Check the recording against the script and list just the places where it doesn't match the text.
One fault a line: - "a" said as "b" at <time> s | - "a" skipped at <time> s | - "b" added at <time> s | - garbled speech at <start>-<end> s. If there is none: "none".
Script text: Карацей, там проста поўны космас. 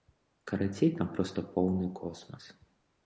none